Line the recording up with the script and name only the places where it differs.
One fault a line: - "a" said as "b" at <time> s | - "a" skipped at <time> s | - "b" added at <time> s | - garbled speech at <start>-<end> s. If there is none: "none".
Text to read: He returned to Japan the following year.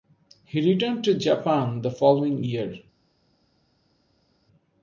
none